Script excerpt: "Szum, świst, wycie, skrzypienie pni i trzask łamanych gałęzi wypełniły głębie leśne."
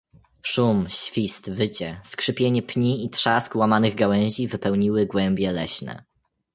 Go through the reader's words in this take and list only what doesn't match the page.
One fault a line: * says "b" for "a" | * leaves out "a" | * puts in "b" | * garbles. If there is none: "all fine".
all fine